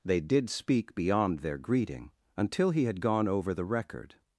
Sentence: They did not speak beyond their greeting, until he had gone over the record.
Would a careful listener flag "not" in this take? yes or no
yes